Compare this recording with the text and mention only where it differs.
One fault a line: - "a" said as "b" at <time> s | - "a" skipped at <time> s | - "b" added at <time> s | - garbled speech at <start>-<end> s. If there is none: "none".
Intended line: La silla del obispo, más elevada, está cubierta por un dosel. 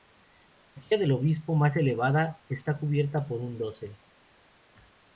none